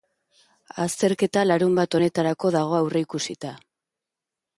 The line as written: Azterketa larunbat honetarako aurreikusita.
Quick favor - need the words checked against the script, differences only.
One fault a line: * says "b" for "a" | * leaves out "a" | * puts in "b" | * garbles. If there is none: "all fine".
* puts in "dago"